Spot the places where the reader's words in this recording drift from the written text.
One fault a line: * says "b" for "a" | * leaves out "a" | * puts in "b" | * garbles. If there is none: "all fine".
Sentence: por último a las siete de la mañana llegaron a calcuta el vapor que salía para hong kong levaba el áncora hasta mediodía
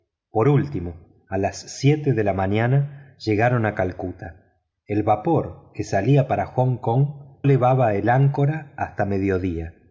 all fine